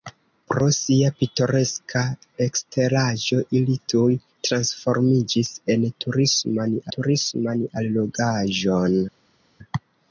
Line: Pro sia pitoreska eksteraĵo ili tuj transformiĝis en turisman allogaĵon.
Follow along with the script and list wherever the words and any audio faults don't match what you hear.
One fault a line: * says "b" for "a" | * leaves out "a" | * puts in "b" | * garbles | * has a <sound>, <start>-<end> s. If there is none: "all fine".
* puts in "turisman"